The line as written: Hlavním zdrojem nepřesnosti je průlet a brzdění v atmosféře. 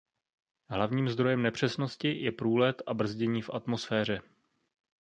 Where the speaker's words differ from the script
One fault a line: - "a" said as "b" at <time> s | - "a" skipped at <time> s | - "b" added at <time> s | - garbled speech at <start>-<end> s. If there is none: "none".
none